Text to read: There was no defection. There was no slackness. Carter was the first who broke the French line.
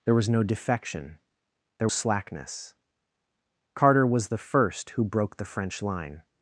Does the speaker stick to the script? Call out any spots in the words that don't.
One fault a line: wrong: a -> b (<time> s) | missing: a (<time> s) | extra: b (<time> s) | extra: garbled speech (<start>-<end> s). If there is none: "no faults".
missing: was no (1.9 s)